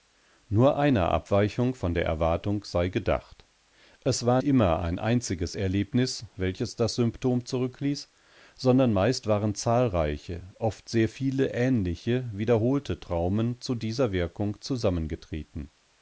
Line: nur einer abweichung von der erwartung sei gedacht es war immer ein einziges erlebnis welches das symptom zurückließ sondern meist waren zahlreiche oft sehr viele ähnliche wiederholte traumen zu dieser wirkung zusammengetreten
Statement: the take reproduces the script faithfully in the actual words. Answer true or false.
true